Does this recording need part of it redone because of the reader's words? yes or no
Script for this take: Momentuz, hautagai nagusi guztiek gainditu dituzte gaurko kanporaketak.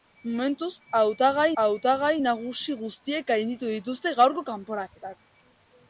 yes